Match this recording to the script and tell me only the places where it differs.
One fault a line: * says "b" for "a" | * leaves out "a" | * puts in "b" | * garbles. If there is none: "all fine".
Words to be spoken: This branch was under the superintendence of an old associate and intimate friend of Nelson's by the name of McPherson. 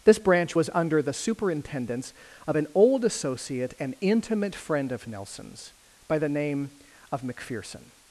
all fine